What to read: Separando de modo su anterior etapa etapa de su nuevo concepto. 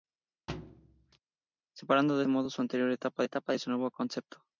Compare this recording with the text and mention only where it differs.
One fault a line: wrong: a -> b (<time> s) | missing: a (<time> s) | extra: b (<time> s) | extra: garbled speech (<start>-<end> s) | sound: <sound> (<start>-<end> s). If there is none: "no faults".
sound: thud (0.5-1.2 s)